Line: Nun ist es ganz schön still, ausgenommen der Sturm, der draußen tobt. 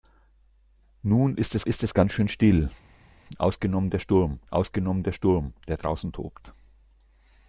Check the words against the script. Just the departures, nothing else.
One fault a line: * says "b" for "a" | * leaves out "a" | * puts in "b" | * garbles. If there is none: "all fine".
* puts in "ist es"
* puts in "ausgenommen der Sturm"